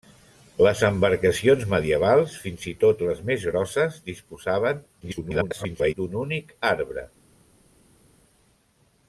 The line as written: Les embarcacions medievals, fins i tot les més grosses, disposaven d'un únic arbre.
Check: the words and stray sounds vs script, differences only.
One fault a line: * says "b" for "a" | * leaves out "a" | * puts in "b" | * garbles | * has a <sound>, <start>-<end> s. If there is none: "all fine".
* garbles